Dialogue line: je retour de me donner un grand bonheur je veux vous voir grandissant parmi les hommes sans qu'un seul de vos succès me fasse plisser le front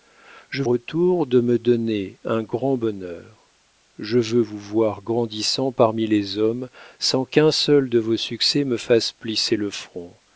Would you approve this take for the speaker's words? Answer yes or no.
yes